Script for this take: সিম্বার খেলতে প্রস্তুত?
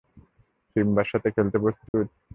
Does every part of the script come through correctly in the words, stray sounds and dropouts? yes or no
no